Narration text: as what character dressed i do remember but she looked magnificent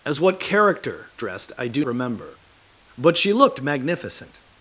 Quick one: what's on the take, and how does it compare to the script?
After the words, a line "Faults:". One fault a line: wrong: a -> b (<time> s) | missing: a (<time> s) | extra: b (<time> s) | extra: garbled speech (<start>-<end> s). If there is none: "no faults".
as what character dressed i do remember but she looked magnificent
Faults:
no faults